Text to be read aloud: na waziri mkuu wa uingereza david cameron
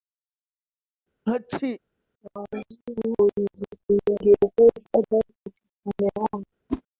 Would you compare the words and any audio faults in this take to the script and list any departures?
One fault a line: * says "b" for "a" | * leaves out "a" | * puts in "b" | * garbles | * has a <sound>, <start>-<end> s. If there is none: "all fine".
* has a sneeze, 1.3-1.8 s
* leaves out "mkuu wa"
* has a whoosh, 6.7-6.8 s